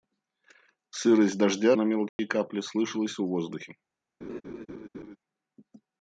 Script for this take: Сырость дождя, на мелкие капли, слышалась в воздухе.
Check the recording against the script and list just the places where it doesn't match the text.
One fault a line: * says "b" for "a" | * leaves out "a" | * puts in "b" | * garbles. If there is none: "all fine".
all fine